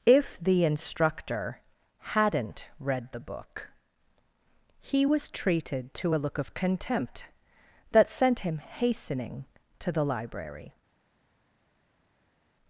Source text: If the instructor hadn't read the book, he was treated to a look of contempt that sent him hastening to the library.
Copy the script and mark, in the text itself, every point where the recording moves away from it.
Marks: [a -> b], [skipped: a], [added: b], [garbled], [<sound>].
If the instructor hadn't read the book, he was treated to a look of contempt that sent him hastening to the library.